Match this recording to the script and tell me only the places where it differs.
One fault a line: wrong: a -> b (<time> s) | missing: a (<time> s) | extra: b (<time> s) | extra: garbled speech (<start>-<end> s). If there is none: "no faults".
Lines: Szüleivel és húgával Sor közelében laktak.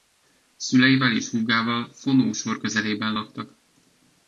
extra: Fonó (1.9 s)